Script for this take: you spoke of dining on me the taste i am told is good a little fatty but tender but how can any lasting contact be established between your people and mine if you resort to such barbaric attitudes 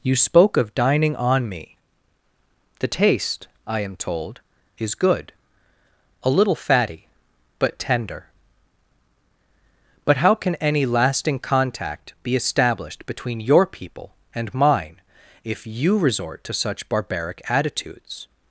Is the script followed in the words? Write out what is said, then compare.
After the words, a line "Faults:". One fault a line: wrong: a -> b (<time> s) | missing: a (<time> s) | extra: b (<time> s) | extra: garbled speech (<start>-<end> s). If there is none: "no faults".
you spoke of dining on me the taste i am told is good a little fatty but tender but how can any lasting contact be established between your people and mine if you resort to such barbaric attitudes
Faults:
no faults